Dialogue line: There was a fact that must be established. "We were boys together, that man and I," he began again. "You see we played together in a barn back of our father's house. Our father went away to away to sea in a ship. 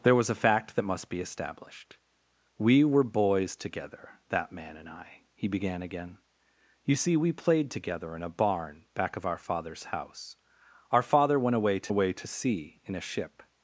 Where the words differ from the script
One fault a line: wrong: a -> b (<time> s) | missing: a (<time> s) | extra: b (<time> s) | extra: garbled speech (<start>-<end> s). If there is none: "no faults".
no faults